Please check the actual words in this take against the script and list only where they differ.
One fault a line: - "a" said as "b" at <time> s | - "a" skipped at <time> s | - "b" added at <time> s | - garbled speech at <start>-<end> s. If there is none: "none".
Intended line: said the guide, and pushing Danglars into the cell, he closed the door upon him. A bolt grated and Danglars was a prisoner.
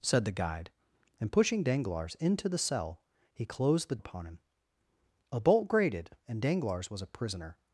- "door" skipped at 4.0 s